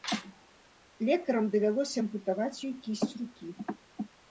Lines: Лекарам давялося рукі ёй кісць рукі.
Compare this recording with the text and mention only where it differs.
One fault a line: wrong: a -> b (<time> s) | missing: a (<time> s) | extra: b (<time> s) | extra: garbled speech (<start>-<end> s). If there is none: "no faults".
wrong: рукі -> ампутаваць (2.0 s)